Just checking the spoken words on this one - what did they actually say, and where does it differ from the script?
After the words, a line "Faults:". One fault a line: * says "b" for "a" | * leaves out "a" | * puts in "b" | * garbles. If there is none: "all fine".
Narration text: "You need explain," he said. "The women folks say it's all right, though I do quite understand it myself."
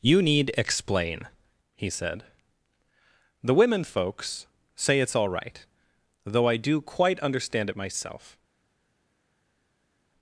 "You need explain," he said. "The women folks say it's all right, though I do quite understand it myself."
Faults:
all fine